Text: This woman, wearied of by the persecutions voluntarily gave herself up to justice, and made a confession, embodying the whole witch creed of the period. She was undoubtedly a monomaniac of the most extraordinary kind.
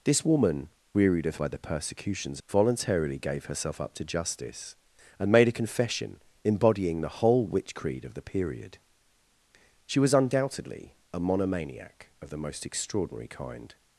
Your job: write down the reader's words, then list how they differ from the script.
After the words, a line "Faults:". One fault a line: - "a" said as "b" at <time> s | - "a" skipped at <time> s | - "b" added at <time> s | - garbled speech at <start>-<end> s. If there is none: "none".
This woman, wearied of by the persecutions voluntarily gave herself up to justice, and made a confession, embodying the whole witch creed of the period. She was undoubtedly a monomaniac of the most extraordinary kind.
Faults:
none